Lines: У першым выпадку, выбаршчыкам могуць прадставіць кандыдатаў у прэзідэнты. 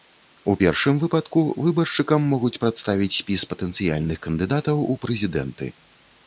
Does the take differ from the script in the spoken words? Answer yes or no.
yes